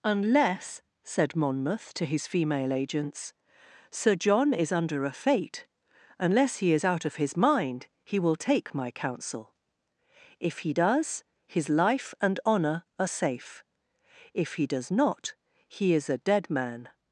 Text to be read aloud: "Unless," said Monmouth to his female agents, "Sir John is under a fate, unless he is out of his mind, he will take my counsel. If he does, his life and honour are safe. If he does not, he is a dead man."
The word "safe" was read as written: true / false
true